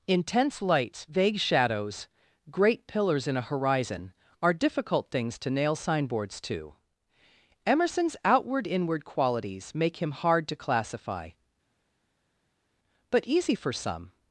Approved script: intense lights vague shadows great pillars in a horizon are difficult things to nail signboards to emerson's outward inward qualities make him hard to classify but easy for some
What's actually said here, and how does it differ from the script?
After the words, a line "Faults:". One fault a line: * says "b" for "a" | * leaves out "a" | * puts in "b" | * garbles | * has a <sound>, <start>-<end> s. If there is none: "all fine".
intense lights vague shadows great pillars in a horizon are difficult things to nail signboards to emerson's outward inward qualities make him hard to classify but easy for some
Faults:
all fine